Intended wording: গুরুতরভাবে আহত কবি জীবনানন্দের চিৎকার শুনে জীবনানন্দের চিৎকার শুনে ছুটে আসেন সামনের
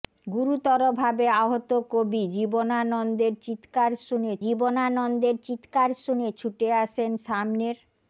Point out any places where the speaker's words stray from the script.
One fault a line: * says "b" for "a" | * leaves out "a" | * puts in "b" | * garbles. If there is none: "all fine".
all fine